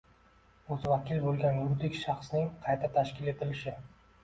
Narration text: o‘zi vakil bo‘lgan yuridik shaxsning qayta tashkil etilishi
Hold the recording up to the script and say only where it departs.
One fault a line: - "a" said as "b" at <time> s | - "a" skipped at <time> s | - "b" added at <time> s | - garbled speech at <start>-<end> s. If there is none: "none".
none